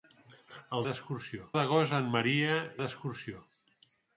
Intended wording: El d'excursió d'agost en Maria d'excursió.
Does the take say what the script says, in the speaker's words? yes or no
yes